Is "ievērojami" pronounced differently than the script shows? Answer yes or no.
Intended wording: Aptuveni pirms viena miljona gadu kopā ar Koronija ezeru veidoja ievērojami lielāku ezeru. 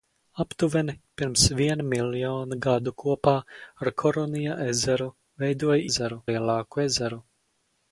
yes